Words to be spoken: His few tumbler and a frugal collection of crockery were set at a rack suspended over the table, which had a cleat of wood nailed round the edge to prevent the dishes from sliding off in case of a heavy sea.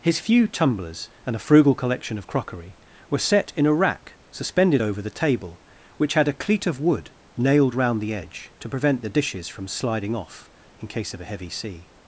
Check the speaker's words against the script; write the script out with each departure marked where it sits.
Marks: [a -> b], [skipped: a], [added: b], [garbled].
His few [tumbler -> tumblers] and a frugal collection of crockery were set [at -> in] a rack suspended over the table, which had a cleat of wood nailed round the edge to prevent the dishes from sliding off in case of a heavy sea.